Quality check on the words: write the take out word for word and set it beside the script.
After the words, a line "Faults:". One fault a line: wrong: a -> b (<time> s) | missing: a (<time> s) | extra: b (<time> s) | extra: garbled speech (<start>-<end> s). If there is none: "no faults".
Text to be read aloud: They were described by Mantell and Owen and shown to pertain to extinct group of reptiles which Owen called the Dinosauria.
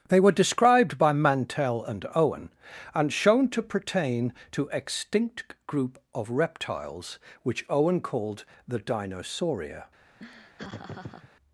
They were described by Mantell and Owen and shown to pertain to extinct group of reptiles which Owen called the Dinosauria.
Faults:
no faults